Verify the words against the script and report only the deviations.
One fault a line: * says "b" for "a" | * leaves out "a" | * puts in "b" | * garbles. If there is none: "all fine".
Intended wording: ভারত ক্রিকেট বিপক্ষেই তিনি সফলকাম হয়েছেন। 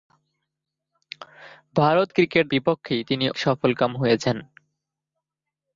all fine